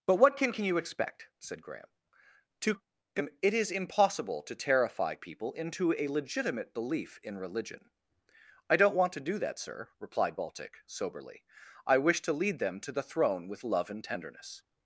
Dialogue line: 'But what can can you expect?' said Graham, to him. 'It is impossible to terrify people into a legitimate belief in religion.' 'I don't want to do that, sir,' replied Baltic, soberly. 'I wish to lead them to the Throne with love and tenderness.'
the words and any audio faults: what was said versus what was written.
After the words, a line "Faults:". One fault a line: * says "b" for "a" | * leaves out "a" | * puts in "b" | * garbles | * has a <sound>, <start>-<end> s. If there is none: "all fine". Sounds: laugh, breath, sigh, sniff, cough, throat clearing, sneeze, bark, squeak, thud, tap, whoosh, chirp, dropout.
'But what can can you expect?' said Graham, to him. 'It is impossible to terrify people into a legitimate belief in religion.' 'I don't want to do that, sir,' replied Baltic, soberly. 'I wish to lead them to the Throne with love and tenderness.'
Faults:
all fine